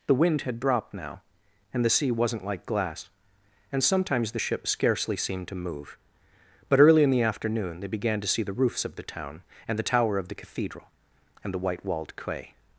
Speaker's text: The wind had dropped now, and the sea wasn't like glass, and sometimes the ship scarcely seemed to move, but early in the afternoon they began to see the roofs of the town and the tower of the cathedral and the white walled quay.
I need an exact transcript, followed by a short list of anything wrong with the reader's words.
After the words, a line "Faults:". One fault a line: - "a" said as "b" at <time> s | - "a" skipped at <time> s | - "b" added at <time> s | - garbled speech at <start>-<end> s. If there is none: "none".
The wind had dropped now, and the sea wasn't like glass, and sometimes the ship scarcely seemed to move, but early in the afternoon they began to see the roofs of the town and the tower of the cathedral and the white walled quay.
Faults:
none